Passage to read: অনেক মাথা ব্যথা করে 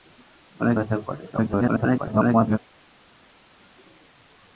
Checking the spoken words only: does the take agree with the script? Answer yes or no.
no